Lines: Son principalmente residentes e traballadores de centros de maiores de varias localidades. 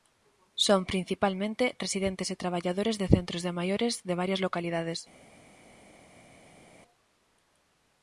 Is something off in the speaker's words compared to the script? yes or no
no